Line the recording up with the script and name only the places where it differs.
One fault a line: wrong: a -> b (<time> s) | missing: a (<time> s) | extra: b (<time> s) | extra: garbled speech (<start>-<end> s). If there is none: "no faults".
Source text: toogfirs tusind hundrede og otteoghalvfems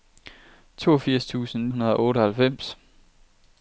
no faults